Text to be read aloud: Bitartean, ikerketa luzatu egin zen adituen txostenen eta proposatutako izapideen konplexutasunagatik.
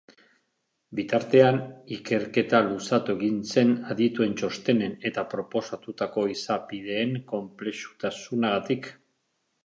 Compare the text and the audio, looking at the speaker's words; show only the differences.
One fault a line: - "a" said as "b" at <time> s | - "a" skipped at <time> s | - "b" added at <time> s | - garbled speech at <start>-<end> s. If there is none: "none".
none